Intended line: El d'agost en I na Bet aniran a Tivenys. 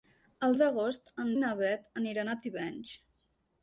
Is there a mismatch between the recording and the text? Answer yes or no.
no